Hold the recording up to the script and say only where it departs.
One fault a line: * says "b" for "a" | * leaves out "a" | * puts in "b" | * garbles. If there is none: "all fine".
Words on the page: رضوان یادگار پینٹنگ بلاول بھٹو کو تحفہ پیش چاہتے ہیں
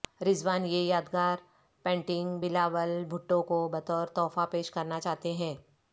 * puts in "یہ"
* puts in "بطور"
* puts in "کرنا"